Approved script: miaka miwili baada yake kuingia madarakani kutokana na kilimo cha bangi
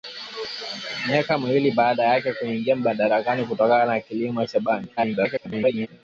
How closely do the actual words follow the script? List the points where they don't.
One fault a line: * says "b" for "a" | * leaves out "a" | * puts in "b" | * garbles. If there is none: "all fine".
* garbles